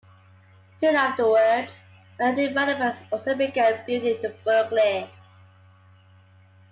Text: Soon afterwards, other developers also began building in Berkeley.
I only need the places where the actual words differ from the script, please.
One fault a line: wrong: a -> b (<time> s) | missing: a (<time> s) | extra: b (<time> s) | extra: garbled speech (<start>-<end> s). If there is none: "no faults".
no faults